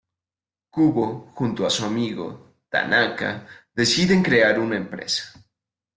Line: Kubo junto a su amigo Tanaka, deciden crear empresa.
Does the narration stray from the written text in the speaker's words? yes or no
yes